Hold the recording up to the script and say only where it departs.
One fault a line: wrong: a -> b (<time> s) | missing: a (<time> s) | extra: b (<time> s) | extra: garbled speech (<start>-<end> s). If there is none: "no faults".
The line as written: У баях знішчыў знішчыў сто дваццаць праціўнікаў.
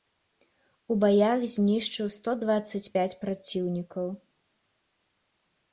missing: знішчыў (2.1 s)
extra: пяць (3.0 s)